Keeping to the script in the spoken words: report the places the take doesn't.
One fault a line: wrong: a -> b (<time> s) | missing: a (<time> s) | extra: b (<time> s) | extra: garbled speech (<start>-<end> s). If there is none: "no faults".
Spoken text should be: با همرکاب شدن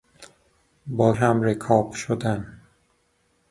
no faults